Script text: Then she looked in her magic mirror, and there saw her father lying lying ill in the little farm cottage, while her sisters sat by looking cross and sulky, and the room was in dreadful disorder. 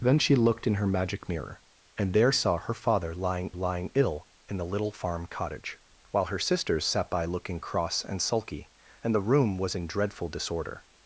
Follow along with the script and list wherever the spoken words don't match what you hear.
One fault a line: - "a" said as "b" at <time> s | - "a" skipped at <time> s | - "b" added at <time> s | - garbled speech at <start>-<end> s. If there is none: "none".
none